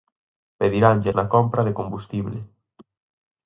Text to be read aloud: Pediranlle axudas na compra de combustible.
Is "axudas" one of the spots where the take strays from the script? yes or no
yes